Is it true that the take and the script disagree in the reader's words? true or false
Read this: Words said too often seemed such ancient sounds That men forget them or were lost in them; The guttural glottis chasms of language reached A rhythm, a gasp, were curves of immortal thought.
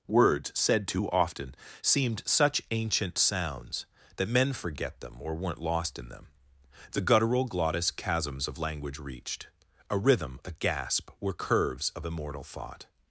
true